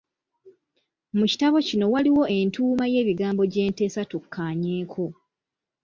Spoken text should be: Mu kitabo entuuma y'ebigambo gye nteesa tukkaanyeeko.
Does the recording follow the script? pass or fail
fail